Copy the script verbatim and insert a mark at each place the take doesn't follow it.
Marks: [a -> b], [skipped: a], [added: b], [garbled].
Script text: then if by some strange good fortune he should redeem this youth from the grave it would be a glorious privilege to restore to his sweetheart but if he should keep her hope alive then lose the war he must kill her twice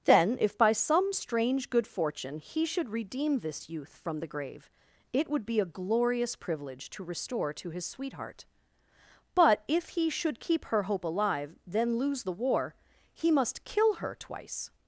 then if by some strange good fortune he should redeem this youth from the grave it would be a glorious privilege to restore to his sweetheart but if he should keep her hope alive then lose the war he must kill her twice